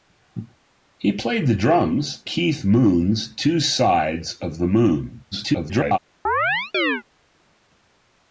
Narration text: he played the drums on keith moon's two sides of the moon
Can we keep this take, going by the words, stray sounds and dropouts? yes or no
no